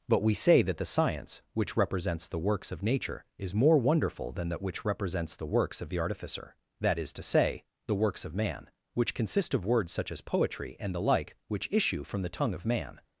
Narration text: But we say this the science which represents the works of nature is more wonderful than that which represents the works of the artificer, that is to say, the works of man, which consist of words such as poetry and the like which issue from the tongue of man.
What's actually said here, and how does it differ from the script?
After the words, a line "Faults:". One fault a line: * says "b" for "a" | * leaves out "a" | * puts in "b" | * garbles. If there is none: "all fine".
But we say that the science which represents the works of nature is more wonderful than that which represents the works of the artificer, that is to say, the works of man, which consist of words such as poetry and the like which issue from the tongue of man.
Faults:
* says "that" for "this"